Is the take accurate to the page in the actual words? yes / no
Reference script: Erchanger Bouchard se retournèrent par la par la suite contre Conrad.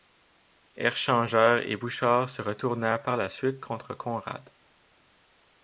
no